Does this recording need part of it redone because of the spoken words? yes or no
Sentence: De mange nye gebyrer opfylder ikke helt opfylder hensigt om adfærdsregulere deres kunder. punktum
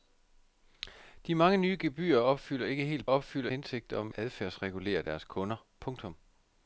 no